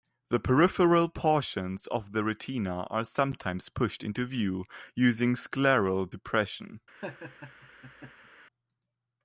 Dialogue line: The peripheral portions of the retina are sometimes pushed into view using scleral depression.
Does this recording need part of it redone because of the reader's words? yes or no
no